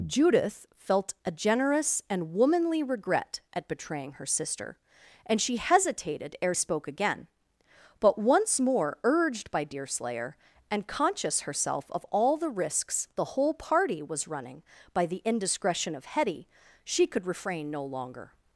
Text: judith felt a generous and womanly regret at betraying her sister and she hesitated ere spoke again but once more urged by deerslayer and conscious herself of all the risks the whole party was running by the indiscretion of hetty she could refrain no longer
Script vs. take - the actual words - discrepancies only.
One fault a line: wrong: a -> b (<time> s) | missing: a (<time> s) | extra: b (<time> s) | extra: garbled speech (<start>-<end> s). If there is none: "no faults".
no faults